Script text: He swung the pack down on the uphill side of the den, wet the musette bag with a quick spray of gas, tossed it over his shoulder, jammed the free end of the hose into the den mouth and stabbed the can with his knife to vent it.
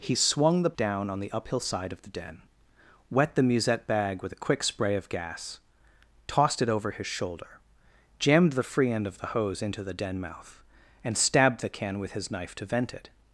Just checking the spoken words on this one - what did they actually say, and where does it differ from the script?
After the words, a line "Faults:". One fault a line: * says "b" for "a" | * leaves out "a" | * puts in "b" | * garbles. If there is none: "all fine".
He swung the down on the uphill side of the den, wet the musette bag with a quick spray of gas, tossed it over his shoulder, jammed the free end of the hose into the den mouth and stabbed the can with his knife to vent it.
Faults:
* leaves out "pack"